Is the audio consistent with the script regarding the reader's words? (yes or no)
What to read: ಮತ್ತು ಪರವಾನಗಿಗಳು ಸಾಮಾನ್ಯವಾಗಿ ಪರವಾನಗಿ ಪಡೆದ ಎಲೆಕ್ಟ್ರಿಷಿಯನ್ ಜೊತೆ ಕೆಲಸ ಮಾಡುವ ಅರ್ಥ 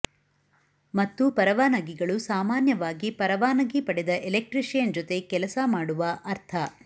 yes